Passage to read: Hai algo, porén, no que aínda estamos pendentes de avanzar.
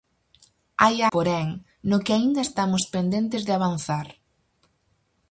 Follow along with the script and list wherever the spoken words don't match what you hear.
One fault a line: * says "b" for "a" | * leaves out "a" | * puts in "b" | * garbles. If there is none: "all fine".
* leaves out "algo"